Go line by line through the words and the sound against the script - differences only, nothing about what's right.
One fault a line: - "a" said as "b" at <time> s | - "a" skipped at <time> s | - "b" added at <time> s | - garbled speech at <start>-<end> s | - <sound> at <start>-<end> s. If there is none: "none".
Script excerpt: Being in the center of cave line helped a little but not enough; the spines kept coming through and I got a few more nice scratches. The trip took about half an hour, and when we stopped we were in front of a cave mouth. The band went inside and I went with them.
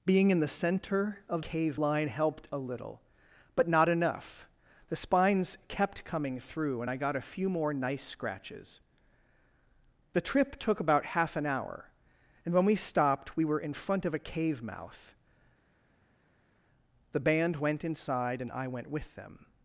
none